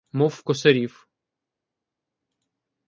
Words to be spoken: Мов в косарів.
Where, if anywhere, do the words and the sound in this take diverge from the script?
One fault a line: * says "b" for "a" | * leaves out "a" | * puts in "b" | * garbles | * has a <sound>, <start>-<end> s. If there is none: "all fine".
all fine